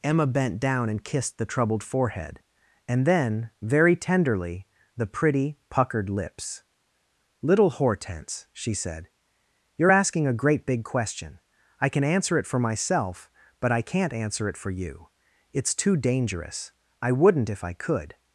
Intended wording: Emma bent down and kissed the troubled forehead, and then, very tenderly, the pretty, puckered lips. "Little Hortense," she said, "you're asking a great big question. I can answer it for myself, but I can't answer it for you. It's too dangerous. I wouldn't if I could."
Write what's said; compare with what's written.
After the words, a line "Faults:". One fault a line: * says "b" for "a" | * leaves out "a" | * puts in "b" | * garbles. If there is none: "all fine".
Emma bent down and kissed the troubled forehead, and then, very tenderly, the pretty, puckered lips. "Little Hortense," she said, "you're asking a great big question. I can answer it for myself, but I can't answer it for you. It's too dangerous. I wouldn't if I could."
Faults:
all fine